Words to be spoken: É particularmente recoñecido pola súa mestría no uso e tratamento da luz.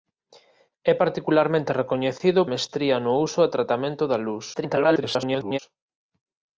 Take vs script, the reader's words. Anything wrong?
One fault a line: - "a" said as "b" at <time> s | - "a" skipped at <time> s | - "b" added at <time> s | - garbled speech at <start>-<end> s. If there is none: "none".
- "pola súa" skipped at 2.4 s
- garbled speech at 4.5-5.6 s